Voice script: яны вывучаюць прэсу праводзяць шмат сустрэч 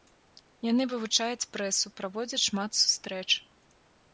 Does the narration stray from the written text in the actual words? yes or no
no